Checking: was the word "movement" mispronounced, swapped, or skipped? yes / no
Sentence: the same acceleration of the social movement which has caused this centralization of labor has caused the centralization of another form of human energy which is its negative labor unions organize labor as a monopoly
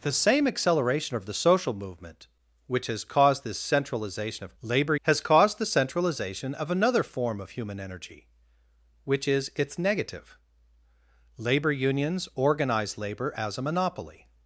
no